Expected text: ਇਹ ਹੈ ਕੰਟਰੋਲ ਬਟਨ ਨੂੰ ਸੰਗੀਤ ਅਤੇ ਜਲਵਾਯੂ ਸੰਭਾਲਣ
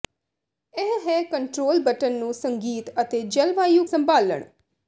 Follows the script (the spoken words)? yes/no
yes